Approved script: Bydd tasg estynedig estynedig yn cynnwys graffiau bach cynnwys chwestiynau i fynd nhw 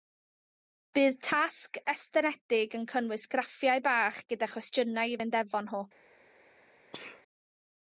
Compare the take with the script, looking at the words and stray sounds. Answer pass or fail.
fail